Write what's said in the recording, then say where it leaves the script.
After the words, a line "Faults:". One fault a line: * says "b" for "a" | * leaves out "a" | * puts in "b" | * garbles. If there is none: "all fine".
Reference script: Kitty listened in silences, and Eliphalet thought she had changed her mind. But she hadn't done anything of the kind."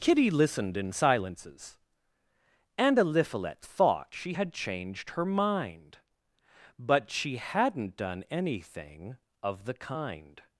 Kitty listened in silences, and Eliphalet thought she had changed her mind. But she hadn't done anything of the kind."
Faults:
all fine